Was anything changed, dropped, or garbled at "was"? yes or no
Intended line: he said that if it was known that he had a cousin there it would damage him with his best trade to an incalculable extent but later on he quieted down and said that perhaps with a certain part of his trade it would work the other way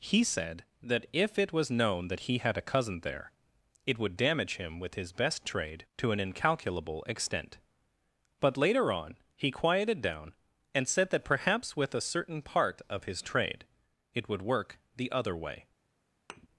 no